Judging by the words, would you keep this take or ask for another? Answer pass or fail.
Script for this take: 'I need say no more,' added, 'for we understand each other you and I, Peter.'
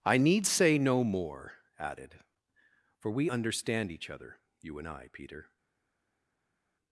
pass